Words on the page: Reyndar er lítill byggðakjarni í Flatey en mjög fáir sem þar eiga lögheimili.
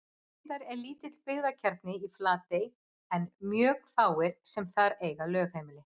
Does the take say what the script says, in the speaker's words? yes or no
yes